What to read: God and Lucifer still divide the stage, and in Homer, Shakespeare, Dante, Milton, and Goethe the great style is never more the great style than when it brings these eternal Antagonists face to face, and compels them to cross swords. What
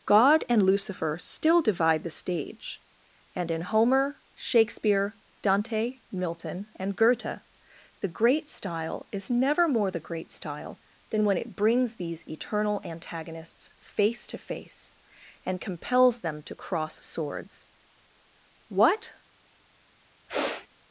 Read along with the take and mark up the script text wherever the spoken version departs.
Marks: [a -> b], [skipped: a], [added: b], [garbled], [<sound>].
God and Lucifer still divide the stage, and in Homer, Shakespeare, Dante, Milton, and Goethe the great style is never more the great style than when it brings these eternal Antagonists face to face, and compels them to cross swords. What [sniff]